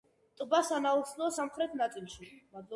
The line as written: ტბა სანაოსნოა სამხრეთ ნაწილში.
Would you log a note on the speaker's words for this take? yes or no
no